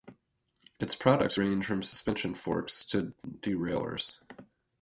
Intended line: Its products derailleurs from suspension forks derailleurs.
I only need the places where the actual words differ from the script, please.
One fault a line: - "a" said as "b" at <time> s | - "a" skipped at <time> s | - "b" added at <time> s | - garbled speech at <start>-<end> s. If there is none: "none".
- "derailleurs" said as "range" at 1.4 s
- "to" added at 2.9 s